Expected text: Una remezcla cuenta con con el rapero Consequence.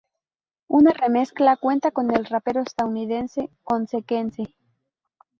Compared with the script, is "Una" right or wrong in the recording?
right